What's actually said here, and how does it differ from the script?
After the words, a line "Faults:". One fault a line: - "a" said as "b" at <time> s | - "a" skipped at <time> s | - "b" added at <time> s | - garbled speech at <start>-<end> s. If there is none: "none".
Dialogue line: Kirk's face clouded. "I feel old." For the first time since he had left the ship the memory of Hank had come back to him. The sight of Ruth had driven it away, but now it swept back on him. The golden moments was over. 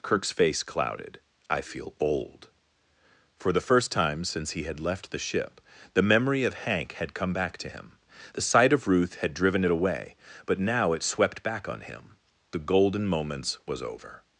Kirk's face clouded. "I feel old." For the first time since he had left the ship the memory of Hank had come back to him. The sight of Ruth had driven it away, but now it swept back on him. The golden moments was over.
Faults:
none